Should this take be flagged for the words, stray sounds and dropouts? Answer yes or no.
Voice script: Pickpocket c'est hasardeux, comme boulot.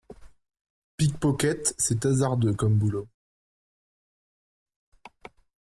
no